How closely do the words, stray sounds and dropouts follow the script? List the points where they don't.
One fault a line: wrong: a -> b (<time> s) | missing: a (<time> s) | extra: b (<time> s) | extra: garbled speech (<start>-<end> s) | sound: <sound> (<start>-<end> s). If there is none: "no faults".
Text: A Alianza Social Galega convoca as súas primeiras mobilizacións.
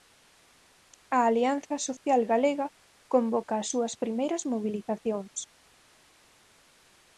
no faults